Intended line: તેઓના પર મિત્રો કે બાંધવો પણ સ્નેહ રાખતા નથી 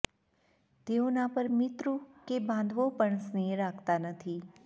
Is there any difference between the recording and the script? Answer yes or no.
no